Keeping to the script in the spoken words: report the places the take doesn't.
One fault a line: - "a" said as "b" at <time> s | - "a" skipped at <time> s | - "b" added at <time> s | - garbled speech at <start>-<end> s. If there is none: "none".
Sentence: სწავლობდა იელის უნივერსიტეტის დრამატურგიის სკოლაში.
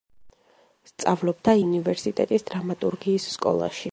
- "იელის" skipped at 1.6 s